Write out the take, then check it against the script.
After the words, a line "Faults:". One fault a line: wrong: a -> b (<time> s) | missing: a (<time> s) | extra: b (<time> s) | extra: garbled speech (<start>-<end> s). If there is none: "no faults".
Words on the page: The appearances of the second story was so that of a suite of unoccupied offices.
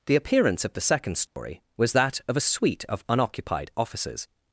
The appearance of the second story was that of a suite of unoccupied offices.
Faults:
wrong: appearances -> appearance (0.1 s)
missing: so (1.9 s)